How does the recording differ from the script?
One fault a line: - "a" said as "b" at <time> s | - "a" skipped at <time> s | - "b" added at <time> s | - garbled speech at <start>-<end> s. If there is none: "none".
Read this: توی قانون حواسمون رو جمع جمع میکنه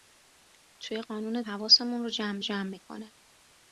none